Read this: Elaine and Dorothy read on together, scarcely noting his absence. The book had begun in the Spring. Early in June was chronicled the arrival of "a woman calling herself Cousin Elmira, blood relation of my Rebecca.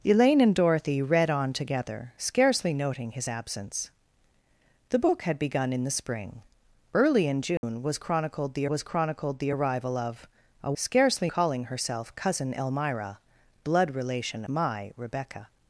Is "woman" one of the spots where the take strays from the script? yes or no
yes